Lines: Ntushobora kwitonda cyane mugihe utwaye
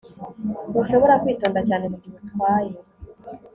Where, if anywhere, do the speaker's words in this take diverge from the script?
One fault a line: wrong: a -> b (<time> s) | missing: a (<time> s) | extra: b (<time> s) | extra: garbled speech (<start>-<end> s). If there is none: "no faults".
no faults